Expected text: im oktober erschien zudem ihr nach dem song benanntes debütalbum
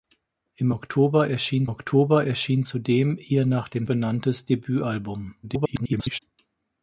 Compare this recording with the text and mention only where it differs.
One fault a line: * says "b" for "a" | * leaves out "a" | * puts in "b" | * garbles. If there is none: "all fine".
* puts in "oktober erschien"
* leaves out "song"
* garbles